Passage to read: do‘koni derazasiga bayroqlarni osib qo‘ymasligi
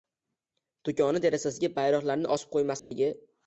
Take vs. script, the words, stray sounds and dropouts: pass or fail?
fail